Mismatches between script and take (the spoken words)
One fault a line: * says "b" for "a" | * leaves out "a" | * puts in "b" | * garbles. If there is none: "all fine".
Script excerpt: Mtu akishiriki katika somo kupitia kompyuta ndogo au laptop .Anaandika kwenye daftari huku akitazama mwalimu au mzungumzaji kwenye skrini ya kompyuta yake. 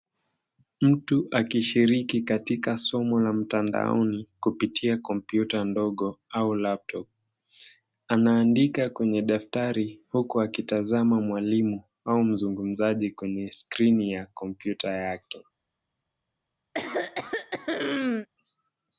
* puts in "la mtandaoni"